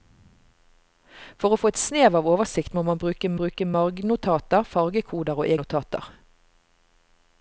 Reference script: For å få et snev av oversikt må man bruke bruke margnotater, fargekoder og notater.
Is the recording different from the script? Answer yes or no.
no